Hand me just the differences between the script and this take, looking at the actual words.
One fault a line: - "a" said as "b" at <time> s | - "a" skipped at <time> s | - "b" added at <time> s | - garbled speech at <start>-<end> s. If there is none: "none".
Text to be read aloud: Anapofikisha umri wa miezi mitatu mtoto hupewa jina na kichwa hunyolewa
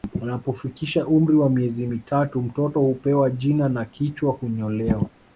none